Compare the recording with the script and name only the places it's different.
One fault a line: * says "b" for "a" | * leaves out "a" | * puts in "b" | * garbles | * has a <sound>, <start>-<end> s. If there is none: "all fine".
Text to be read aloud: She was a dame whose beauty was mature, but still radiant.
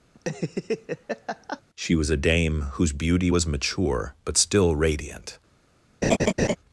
* has a laugh, 0.1-1.6 s
* has a laugh, 6.0-6.6 s